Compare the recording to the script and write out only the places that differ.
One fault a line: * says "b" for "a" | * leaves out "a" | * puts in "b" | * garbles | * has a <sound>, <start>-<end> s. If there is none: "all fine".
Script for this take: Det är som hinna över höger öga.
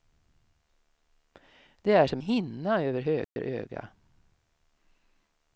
* has a dropout, 3.2-3.4 s